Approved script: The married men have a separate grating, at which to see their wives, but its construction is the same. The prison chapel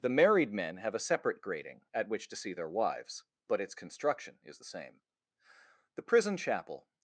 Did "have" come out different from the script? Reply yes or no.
no